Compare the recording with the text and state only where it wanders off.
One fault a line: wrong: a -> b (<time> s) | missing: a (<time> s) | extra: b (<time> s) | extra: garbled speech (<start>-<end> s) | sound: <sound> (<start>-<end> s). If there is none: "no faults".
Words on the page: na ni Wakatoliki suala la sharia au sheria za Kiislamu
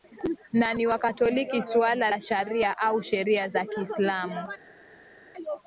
no faults